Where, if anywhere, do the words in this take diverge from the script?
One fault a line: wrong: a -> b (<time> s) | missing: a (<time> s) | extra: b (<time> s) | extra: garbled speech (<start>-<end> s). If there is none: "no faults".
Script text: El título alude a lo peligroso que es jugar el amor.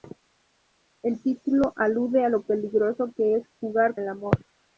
no faults